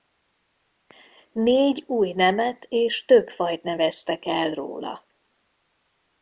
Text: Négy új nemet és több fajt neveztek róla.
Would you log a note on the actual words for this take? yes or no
yes